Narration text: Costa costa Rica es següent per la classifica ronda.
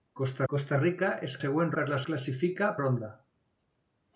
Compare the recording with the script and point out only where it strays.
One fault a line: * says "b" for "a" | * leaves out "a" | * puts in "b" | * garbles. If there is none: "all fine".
all fine